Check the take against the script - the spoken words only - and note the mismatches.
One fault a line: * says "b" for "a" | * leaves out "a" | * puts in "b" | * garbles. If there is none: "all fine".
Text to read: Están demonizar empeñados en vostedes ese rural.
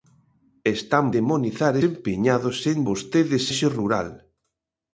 all fine